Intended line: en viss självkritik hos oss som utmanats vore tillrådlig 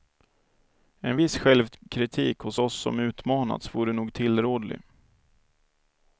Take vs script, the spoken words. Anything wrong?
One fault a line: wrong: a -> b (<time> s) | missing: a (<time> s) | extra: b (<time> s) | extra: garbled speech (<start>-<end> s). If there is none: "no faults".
extra: nog (3.9 s)